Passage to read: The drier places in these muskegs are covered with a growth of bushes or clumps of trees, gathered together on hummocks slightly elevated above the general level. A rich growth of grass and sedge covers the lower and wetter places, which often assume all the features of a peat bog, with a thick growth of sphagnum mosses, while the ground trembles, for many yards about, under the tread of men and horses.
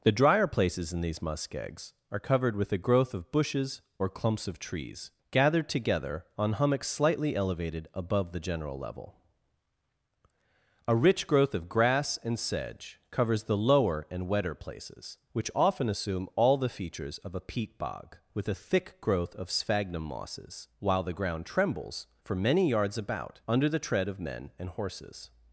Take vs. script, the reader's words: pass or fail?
pass